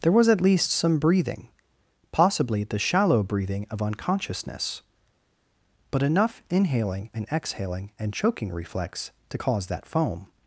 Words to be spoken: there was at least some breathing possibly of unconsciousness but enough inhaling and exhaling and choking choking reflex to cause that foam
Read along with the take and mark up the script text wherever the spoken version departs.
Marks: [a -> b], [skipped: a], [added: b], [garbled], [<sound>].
there was at least some breathing possibly [added: the shallow breathing] of unconsciousness but enough inhaling and exhaling and choking [skipped: choking] reflex to cause that foam